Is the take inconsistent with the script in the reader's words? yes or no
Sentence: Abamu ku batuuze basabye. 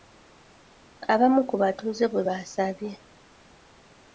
yes